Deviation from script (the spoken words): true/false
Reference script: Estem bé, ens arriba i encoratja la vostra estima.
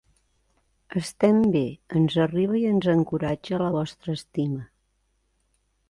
true